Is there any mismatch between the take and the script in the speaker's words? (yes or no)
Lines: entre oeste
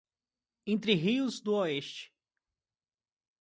yes